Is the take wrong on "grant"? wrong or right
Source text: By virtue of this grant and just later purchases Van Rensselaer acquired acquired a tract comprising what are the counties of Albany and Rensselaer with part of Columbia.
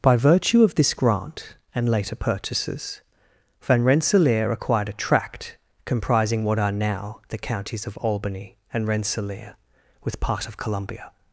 right